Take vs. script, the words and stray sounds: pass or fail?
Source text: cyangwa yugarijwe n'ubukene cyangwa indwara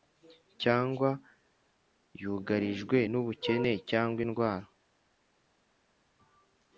pass